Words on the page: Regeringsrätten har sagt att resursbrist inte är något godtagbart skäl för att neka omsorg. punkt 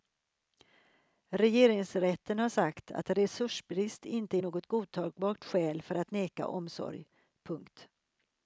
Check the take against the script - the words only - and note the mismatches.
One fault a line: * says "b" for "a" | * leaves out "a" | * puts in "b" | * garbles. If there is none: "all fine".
all fine